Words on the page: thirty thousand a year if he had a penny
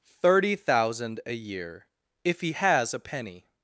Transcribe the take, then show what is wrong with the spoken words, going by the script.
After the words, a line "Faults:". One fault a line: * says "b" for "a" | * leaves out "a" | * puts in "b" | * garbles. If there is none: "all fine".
thirty thousand a year if he has a penny
Faults:
* says "has" for "had"